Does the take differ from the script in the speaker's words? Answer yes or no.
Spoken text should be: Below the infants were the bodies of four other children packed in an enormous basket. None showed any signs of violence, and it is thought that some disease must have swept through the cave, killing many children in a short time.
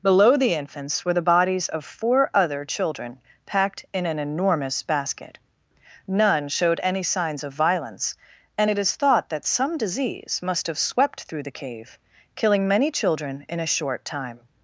no